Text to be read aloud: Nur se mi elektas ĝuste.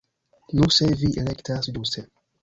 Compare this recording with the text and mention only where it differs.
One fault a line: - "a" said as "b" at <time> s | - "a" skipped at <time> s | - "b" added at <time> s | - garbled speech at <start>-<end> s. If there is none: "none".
- "mi" said as "vi" at 1.0 s